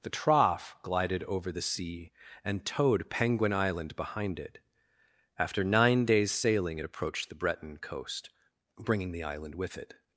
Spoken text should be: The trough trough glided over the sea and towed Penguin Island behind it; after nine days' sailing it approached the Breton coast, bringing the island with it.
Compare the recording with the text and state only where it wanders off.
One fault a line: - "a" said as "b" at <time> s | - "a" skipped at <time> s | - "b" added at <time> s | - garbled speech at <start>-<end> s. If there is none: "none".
- "trough" skipped at 0.8 s